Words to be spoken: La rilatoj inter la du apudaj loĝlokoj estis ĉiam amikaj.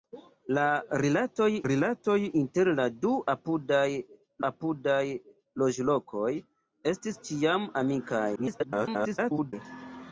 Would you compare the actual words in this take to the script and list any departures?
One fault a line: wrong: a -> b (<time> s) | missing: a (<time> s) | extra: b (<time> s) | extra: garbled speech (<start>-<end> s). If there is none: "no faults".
extra: rilatoj (1.7 s)
extra: apudaj (4.5 s)
extra: garbled speech (8.4-9.5 s)